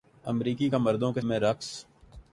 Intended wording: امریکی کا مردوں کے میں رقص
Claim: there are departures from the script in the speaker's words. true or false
false